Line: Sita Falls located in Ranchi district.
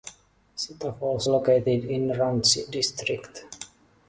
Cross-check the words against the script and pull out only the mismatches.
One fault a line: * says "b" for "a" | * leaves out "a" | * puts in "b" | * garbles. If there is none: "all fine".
all fine